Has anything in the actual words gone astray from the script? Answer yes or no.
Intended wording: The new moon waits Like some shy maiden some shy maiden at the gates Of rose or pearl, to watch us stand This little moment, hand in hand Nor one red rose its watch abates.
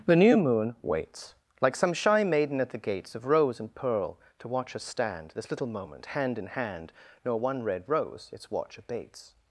yes